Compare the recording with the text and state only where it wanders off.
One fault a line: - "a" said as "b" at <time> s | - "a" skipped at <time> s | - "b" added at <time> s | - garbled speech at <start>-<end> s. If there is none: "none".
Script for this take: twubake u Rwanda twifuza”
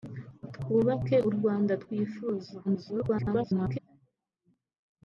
- garbled speech at 2.6-3.8 s